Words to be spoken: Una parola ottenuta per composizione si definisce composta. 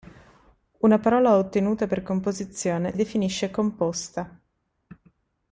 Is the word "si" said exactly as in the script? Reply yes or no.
no